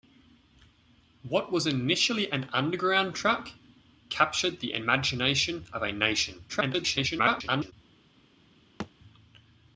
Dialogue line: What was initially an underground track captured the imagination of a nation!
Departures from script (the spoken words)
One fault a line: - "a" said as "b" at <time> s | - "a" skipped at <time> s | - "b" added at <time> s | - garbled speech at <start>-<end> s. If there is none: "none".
- garbled speech at 6.5-7.7 s